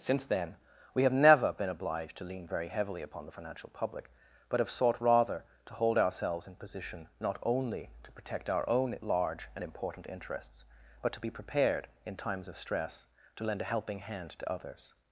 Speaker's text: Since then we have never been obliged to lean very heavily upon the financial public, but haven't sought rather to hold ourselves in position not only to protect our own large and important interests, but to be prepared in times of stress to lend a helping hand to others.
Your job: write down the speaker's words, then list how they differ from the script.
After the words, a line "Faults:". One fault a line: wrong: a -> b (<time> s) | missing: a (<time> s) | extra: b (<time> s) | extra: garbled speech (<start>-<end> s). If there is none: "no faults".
Since then we have never been obliged to lean very heavily upon the financial public, but have sought rather to hold ourselves in position not only to protect our own large and important interests, but to be prepared in times of stress to lend a helping hand to others.
Faults:
wrong: haven't -> have (4.6 s)